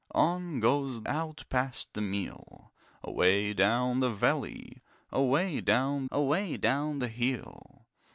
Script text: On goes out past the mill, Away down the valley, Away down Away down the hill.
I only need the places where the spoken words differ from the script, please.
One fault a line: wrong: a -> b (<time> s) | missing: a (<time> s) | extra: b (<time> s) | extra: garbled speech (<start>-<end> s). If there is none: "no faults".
no faults